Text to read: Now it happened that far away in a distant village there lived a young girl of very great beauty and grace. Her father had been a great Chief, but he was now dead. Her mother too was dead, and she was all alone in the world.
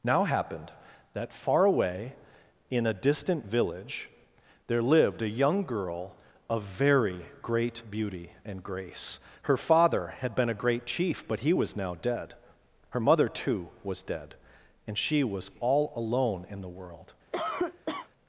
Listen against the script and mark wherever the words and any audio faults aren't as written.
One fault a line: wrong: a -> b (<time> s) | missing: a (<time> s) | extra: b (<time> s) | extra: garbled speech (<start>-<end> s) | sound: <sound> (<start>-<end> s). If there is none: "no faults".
missing: it (0.2 s)
sound: cough (17.3-18.1 s)